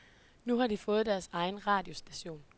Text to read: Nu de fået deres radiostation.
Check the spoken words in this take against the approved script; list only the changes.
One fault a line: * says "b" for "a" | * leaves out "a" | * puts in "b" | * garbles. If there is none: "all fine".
* puts in "har"
* puts in "egen"